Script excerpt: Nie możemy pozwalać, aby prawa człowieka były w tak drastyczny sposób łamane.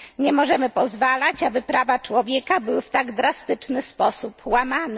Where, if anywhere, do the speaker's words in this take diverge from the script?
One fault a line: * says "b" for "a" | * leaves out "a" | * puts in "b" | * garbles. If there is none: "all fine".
all fine